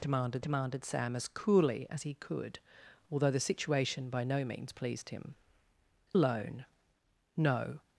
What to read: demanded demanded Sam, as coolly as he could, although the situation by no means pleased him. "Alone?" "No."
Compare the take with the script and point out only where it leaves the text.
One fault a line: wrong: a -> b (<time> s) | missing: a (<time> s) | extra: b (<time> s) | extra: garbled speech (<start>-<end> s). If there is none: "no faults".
no faults